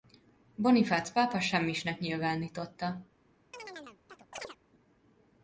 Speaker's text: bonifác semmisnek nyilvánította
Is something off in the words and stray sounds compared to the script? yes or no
yes